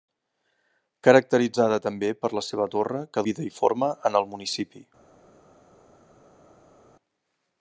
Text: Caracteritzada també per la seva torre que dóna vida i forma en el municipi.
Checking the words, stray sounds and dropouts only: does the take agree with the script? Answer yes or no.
no